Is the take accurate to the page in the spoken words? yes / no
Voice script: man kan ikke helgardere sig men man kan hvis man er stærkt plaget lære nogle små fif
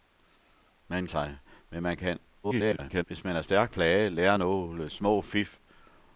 no